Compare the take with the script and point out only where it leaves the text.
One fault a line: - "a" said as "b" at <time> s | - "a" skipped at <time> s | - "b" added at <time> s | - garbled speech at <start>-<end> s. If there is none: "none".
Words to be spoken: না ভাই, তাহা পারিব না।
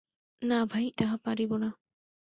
none